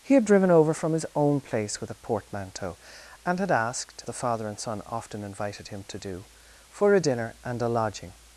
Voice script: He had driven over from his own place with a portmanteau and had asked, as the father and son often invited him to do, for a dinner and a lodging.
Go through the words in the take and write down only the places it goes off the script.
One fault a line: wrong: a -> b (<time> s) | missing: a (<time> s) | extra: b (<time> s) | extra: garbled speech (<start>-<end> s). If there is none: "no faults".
missing: as (4.0 s)